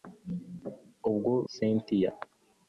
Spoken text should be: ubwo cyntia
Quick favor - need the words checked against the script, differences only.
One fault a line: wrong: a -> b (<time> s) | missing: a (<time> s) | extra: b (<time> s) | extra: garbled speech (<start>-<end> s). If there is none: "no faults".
no faults